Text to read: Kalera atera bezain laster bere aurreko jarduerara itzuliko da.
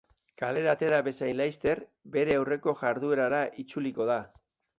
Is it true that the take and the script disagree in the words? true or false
false